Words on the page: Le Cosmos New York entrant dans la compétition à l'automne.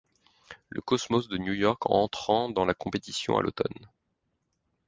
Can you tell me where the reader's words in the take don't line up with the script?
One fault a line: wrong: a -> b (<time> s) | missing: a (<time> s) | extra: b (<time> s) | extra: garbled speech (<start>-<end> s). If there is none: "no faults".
extra: de (1.3 s)